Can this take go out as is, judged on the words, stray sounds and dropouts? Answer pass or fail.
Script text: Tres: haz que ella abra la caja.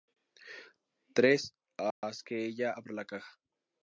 fail